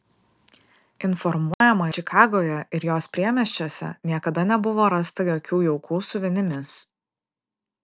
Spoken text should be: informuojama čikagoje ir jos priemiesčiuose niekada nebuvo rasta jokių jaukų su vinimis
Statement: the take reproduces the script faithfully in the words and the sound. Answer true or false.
false